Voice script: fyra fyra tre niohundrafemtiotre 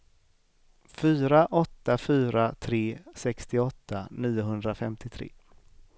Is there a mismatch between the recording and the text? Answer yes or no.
yes